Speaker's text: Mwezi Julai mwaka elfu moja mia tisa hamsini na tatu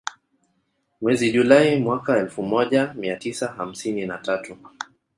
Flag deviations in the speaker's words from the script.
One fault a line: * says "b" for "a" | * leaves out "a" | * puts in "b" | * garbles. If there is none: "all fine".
all fine